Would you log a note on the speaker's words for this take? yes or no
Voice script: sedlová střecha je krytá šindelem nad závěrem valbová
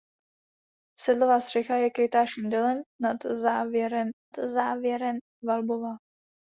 yes